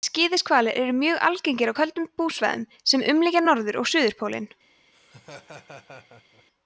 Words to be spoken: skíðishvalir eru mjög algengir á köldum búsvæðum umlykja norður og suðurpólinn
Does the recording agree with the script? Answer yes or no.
no